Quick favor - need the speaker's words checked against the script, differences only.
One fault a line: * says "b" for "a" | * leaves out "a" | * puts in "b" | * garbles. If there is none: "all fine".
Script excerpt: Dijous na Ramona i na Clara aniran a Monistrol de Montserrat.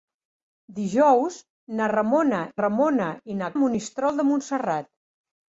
* puts in "Ramona"
* leaves out "Clara aniran"